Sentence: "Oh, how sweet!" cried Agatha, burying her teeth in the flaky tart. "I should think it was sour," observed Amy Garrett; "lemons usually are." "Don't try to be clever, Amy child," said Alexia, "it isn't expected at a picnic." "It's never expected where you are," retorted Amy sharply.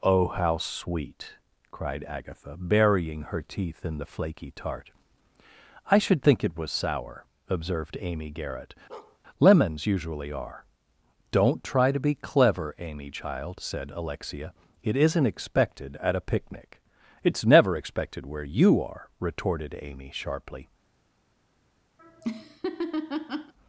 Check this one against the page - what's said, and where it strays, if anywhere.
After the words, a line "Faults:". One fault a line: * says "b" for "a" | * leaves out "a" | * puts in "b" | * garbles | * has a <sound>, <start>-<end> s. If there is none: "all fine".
"Oh, how sweet!" cried Agatha, burying her teeth in the flaky tart. "I should think it was sour," observed Amy Garrett; "lemons usually are." "Don't try to be clever, Amy child," said Alexia, "it isn't expected at a picnic." "It's never expected where you are," retorted Amy sharply.
Faults:
* has a bark, 8.9-9.2 s
* has a laugh, 22.0-23.5 s